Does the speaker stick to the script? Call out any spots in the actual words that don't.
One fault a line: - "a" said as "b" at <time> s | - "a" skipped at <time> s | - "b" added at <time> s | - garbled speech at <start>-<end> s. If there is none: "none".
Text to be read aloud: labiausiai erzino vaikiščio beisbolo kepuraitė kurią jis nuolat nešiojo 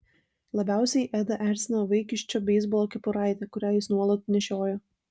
- "edą" added at 1.2 s